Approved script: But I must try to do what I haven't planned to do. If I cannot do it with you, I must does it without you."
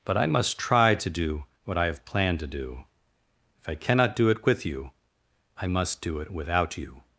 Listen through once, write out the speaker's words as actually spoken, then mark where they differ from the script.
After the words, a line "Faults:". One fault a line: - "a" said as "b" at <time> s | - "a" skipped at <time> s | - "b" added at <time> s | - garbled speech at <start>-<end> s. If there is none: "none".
But I must try to do what I have planned to do. If I cannot do it with you, I must do it without you."
Faults:
- "haven't" said as "have" at 1.9 s
- "does" said as "do" at 6.0 s